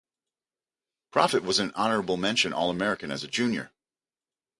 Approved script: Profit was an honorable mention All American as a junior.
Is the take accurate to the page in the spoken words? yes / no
yes